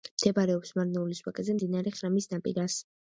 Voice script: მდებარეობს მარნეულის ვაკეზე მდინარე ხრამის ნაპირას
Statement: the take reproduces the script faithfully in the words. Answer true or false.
true